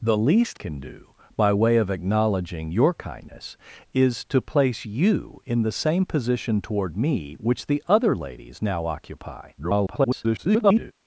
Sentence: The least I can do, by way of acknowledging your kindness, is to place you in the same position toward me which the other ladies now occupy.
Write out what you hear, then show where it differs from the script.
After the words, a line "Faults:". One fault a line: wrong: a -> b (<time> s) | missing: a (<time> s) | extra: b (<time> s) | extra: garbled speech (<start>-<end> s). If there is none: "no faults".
The least can do, by way of acknowledging your kindness, is to place you in the same position toward me which the other ladies now occupy. [garbled]
Faults:
missing: I (0.6 s)
extra: garbled speech (9.6-10.9 s)